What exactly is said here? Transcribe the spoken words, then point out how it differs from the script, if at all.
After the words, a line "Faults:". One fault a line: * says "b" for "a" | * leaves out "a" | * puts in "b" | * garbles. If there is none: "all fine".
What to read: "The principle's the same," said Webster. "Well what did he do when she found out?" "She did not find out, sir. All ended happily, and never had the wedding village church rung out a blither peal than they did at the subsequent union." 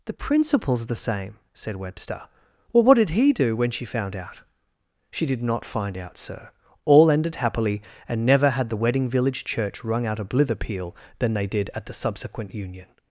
"The principle's the same," said Webster. "Well what did he do when she found out?" "She did not find out, sir. All ended happily, and never had the wedding village church rung out a blither peal than they did at the subsequent union."
Faults:
all fine